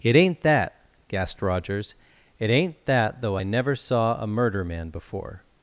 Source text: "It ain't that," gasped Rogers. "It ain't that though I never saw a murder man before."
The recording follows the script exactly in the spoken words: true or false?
true